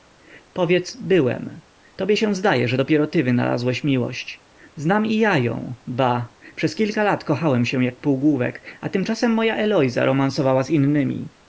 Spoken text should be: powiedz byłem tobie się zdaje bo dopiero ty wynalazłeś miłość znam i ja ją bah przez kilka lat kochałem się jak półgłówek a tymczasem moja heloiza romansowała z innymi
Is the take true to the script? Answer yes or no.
no